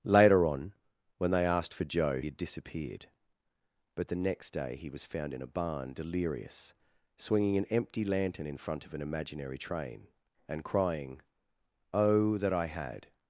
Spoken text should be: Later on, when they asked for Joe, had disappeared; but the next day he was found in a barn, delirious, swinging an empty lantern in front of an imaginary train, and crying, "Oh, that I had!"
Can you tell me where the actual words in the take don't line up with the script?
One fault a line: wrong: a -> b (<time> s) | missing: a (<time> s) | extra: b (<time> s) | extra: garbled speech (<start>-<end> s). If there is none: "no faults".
no faults